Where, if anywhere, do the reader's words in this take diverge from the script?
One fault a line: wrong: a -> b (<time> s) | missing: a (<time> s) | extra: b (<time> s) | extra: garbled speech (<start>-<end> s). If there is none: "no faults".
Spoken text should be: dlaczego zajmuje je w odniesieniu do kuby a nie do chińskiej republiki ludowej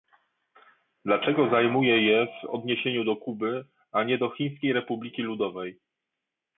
no faults